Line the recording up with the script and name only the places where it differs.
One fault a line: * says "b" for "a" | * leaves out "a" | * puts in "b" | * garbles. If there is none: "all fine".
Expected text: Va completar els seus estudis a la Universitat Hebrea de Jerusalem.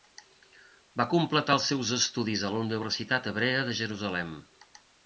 all fine